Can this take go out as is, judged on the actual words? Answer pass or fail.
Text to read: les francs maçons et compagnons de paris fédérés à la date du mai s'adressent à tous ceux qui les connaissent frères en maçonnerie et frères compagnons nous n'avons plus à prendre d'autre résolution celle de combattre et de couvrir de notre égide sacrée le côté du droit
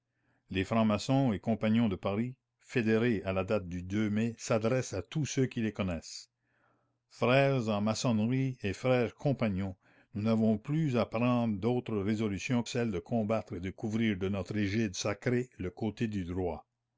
pass